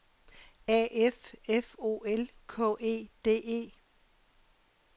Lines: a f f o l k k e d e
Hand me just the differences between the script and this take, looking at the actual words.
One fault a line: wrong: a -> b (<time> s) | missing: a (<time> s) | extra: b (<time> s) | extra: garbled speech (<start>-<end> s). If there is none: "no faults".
missing: k (2.8 s)